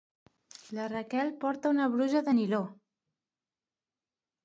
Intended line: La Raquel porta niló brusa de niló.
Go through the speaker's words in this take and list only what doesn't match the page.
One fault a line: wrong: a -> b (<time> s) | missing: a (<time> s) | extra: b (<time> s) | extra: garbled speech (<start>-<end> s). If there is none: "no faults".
wrong: niló -> una (1.7 s)